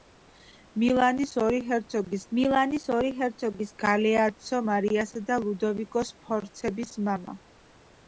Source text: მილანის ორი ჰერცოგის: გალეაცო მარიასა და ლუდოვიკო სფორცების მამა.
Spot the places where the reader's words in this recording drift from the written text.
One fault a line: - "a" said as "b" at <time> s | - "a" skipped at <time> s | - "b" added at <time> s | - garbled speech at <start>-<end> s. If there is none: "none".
- "მილანის ორი ჰერცოგის" added at 2.4 s